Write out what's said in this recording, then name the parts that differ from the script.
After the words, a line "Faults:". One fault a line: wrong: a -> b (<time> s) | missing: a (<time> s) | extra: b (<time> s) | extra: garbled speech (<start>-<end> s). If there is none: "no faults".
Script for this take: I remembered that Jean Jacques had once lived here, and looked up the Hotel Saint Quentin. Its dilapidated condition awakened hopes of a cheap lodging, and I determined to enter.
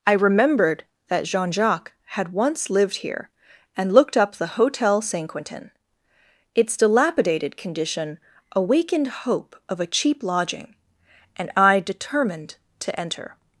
I remembered that Jean Jacques had once lived here, and looked up the Hotel Saint Quentin. Its dilapidated condition awakened hope of a cheap lodging, and I determined to enter.
Faults:
wrong: hopes -> hope (9.1 s)